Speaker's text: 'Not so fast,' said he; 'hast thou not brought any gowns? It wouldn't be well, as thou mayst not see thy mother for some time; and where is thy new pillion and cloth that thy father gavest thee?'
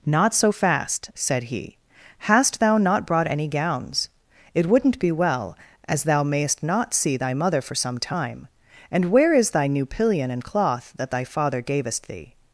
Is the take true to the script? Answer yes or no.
yes